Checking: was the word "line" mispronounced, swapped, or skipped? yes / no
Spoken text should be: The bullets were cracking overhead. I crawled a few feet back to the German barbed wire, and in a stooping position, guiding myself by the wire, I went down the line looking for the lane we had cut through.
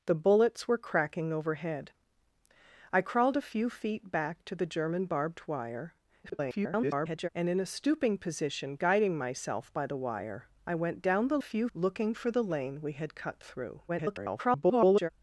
yes